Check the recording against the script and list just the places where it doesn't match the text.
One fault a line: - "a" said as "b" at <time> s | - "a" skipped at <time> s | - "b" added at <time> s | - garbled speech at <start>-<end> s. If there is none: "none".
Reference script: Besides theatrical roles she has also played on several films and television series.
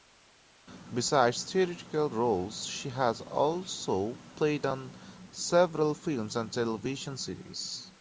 none